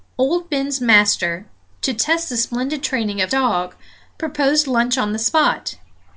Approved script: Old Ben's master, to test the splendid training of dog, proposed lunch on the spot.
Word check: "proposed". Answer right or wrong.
right